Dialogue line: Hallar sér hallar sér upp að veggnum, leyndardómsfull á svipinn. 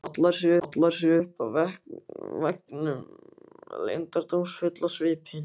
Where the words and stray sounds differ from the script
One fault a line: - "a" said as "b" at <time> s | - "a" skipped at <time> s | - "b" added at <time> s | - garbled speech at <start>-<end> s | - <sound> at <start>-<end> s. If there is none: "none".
none